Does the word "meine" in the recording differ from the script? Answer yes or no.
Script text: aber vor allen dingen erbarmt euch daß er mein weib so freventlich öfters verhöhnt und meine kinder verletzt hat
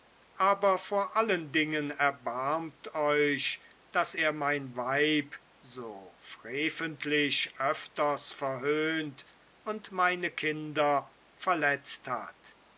no